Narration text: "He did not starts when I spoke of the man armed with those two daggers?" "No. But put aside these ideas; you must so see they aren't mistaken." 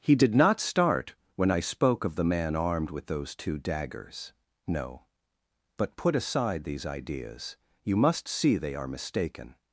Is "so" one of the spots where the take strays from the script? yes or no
yes